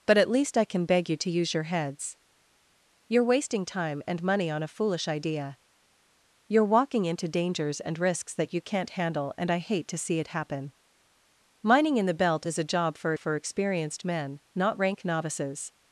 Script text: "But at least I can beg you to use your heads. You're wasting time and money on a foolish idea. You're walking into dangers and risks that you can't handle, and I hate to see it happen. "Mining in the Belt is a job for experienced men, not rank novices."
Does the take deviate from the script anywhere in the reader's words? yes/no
yes